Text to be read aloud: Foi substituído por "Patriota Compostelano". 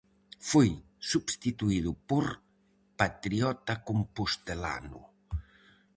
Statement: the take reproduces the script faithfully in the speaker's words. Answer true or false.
true